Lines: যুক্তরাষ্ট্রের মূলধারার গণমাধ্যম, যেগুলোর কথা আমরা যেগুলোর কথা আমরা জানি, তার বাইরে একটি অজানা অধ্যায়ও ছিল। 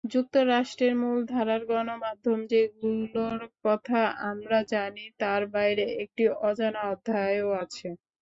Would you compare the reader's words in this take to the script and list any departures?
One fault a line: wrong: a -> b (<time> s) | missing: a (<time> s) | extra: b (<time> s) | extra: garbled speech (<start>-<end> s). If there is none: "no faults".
missing: যেগুলোর কথা আমরা (4.6 s)
wrong: ছিল -> আছে (7.6 s)